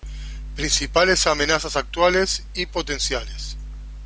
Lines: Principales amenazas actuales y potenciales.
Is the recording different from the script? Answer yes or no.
no